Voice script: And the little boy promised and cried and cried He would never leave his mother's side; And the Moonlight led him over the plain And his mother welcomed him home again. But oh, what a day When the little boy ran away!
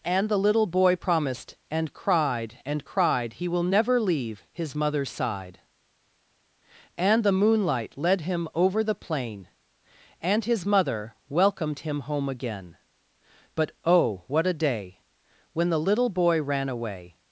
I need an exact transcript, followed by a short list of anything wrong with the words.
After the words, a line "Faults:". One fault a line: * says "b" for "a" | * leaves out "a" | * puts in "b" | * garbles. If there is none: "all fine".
And the little boy promised and cried and cried He will never leave his mother's side; And the Moonlight led him over the plain And his mother welcomed him home again. But oh, what a day When the little boy ran away!
Faults:
* says "will" for "would"